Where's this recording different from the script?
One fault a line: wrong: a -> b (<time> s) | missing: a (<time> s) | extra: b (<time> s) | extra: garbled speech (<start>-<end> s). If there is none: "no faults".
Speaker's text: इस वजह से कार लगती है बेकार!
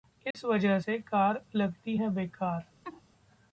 no faults